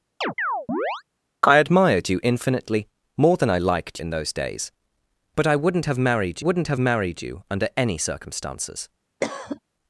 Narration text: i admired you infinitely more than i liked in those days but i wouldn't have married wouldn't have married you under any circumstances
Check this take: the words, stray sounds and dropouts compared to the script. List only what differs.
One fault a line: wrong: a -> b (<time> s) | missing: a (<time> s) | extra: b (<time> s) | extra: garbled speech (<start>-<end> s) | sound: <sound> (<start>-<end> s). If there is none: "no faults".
sound: chirp (0.2-1.0 s)
sound: cough (9.2-9.6 s)